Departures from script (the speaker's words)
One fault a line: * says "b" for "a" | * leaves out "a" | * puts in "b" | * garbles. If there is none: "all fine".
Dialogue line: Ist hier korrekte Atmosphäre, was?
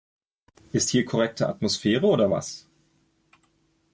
* puts in "oder"